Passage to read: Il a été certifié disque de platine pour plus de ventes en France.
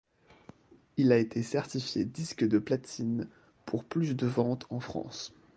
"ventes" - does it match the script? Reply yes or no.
yes